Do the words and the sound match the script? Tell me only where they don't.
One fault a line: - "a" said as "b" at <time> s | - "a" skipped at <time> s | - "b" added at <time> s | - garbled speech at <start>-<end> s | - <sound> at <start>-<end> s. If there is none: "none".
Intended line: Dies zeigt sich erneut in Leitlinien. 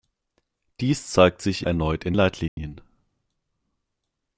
- dropout at 2.5-2.6 s